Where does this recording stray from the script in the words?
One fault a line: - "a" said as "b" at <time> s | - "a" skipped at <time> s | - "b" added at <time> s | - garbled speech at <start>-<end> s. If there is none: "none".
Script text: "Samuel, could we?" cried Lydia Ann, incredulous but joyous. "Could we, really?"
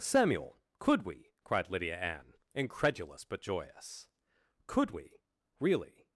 none